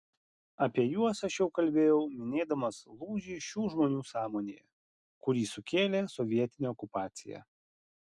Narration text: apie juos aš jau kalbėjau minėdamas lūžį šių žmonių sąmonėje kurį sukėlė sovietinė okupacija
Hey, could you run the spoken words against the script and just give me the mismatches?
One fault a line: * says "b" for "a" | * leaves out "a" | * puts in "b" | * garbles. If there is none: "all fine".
all fine